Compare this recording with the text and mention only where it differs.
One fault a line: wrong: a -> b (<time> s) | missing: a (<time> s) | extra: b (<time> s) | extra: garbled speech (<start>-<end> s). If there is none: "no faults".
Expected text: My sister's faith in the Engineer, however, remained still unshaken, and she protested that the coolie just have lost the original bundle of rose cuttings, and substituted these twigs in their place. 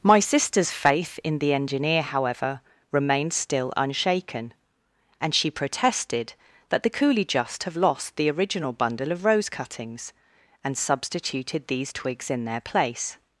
no faults